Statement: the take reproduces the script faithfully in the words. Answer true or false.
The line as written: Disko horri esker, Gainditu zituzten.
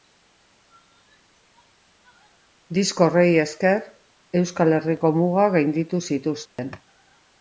false